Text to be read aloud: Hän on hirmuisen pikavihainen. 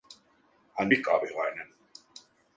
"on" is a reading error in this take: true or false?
true